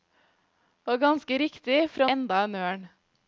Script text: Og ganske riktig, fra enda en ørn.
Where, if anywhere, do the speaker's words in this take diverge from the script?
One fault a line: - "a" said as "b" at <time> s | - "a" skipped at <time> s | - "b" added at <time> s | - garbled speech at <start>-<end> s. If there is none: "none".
none